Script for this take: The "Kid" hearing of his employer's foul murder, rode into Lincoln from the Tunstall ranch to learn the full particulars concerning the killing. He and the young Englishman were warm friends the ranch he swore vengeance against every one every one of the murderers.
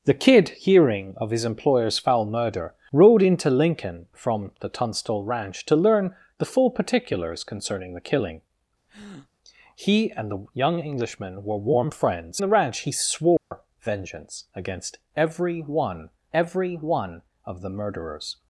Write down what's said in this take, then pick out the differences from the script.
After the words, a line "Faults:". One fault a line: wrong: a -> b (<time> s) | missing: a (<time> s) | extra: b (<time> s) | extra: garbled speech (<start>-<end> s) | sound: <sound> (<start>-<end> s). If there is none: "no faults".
The "Kid" hearing of his employer's foul murder, rode into Lincoln from the Tunstall ranch to learn the full particulars concerning the killing. He and the young Englishman were warm friends the ranch he swore vengeance against every one every one of the murderers.
Faults:
sound: breath (8.9-9.3 s)
sound: dropout (13.4-13.5 s)